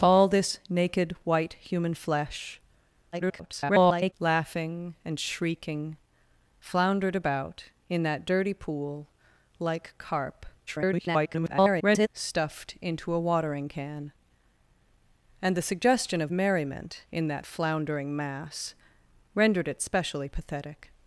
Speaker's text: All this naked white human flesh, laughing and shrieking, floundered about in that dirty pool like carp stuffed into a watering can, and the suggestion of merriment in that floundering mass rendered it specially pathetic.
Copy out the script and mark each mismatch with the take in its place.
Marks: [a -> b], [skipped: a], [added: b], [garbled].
All this naked white human flesh, [garbled] laughing and shrieking, floundered about in that dirty pool like carp [garbled] stuffed into a watering can, and the suggestion of merriment in that floundering mass rendered it specially pathetic.